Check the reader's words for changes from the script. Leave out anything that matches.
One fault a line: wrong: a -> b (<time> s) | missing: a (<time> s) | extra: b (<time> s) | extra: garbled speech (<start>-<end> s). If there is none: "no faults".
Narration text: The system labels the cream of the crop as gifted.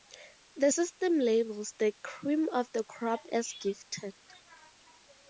no faults